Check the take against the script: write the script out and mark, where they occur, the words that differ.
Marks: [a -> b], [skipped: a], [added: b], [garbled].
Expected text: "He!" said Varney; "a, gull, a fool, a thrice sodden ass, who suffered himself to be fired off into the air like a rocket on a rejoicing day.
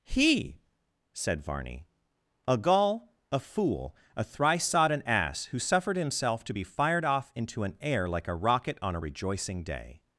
"He!" said Varney; "a, gull, a fool, a thrice sodden ass, who suffered himself to be fired off into [the -> an] air like a rocket on a rejoicing day.